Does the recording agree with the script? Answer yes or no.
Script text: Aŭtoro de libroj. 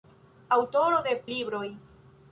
yes